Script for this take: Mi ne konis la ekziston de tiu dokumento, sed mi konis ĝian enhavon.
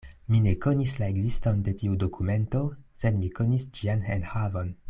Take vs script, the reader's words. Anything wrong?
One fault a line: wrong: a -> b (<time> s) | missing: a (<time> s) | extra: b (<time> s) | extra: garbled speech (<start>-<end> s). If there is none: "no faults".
no faults